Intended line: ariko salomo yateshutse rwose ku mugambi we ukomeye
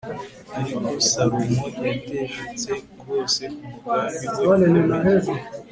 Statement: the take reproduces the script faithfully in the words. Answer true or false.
true